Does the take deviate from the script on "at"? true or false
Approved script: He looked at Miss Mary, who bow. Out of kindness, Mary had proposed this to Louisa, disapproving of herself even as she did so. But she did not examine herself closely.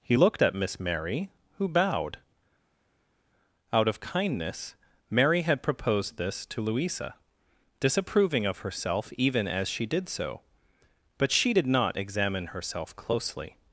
false